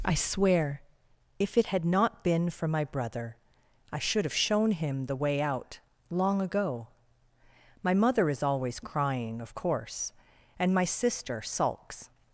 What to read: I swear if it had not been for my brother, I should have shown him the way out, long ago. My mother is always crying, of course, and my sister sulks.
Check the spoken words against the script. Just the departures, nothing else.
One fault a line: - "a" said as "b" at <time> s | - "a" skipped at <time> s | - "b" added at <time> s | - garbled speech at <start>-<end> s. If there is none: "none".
none